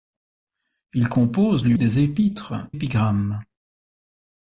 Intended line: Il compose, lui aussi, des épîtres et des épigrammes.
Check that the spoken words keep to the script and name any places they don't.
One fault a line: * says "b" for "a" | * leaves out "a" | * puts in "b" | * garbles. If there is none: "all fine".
* leaves out "aussi"
* leaves out "et des"